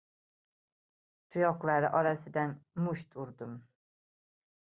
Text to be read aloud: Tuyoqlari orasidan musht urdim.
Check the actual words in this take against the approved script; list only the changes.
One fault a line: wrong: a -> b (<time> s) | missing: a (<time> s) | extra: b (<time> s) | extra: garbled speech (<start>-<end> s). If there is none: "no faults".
no faults